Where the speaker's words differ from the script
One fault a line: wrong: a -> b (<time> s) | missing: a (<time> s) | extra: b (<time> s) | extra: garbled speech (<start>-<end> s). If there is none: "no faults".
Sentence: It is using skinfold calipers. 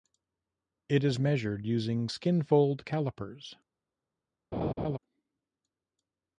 extra: measured (1.2 s)